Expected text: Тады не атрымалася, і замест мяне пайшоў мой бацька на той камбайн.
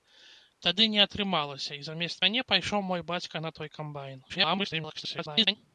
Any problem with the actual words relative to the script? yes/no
yes